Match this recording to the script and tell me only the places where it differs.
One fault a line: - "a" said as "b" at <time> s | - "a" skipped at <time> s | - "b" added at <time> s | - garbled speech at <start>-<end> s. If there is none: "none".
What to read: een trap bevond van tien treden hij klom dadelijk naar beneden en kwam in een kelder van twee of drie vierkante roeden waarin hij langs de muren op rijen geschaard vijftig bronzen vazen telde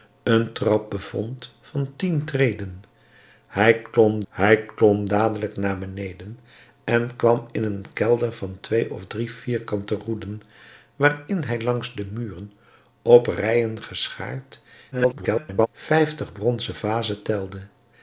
- "hij klom" added at 4.3 s
- garbled speech at 14.9-15.7 s